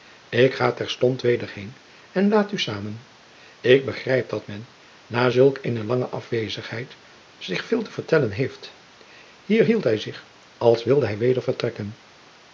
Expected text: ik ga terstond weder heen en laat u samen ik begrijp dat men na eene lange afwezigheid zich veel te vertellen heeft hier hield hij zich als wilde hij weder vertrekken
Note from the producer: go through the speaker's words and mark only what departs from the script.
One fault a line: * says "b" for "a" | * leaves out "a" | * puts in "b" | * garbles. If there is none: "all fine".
* puts in "zulk"